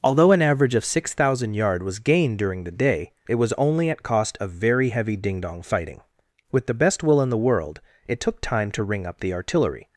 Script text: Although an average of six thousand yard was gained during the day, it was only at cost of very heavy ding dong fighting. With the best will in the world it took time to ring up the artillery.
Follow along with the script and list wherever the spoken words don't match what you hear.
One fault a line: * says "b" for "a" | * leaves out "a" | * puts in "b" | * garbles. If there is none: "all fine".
all fine